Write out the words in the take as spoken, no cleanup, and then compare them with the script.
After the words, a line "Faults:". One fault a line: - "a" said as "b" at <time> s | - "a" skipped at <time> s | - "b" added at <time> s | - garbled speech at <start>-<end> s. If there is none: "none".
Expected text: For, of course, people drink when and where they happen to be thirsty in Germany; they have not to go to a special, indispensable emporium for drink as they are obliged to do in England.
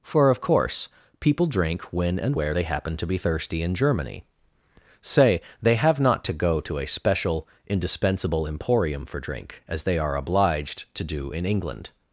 For, of course, people drink when and where they happen to be thirsty in Germany; say they have not to go to a special, indispensable emporium for drink as they are obliged to do in England.
Faults:
- "say" added at 5.0 s